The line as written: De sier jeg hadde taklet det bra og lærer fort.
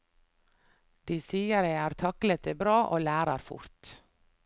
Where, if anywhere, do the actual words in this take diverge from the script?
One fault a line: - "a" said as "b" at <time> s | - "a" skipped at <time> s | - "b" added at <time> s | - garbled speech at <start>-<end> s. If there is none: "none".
- "hadde" said as "har" at 1.8 s